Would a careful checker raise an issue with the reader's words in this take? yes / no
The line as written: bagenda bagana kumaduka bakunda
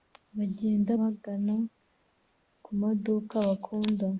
no